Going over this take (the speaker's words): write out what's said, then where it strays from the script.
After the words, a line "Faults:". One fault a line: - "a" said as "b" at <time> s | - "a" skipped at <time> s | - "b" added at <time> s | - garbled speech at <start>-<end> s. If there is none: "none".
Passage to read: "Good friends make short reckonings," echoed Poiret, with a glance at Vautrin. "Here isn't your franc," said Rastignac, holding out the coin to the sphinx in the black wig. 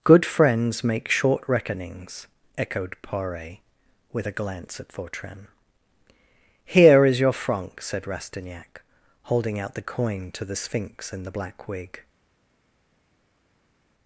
"Good friends make short reckonings," echoed Poiret, with a glance at Vautrin. "Here is your franc," said Rastignac, holding out the coin to the sphinx in the black wig.
Faults:
- "isn't" said as "is" at 7.0 s